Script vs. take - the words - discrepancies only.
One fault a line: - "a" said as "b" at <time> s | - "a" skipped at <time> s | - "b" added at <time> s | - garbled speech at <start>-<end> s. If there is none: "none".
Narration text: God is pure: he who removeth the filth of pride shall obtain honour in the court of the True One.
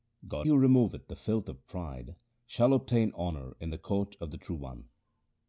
- "is pure he" skipped at 0.5 s